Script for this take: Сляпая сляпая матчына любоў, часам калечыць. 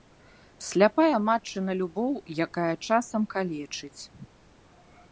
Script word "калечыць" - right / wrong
right